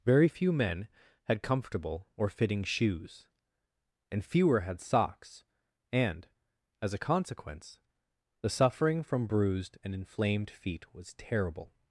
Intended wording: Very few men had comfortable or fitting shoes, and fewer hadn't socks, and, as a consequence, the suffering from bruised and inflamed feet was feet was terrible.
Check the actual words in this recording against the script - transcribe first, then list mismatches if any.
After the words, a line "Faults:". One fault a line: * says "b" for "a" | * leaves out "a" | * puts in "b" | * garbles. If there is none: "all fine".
Very few men had comfortable or fitting shoes, and fewer had socks, and, as a consequence, the suffering from bruised and inflamed feet was terrible.
Faults:
* says "had" for "hadn't"
* leaves out "feet was"